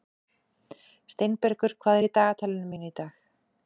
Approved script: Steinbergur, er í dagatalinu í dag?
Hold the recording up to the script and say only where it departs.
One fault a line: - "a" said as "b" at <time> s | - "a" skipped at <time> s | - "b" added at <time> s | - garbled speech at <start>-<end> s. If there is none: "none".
- "hvað" added at 1.9 s
- "mínu" added at 2.7 s